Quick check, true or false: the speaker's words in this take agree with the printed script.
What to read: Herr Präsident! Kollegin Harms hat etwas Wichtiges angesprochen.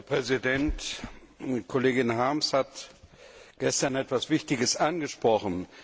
false